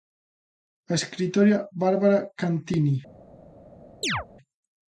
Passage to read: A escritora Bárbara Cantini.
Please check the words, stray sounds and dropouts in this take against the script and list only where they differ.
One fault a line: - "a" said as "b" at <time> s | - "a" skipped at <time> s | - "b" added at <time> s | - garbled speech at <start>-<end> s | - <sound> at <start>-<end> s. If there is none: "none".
- chirp at 4.0-4.3 s